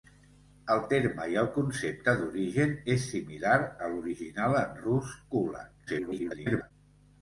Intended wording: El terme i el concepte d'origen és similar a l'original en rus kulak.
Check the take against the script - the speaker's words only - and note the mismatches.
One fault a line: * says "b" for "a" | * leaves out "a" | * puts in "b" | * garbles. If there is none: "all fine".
* garbles